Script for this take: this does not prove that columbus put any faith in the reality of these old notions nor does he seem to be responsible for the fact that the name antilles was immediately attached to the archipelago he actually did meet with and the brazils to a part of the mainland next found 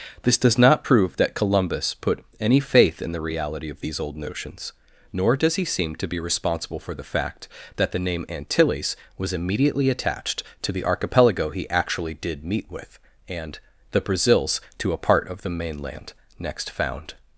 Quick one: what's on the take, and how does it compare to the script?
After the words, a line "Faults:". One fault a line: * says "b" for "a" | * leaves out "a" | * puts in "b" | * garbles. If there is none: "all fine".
this does not prove that columbus put any faith in the reality of these old notions nor does he seem to be responsible for the fact that the name antilles was immediately attached to the archipelago he actually did meet with and the brazils to a part of the mainland next found
Faults:
all fine